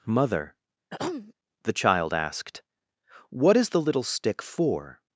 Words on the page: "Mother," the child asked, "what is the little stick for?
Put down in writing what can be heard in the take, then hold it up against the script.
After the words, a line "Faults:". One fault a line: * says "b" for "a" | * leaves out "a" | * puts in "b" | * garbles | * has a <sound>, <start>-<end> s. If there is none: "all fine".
"Mother," the child asked, "what is the little stick for?
Faults:
* has a throat clearing, 0.9-1.3 s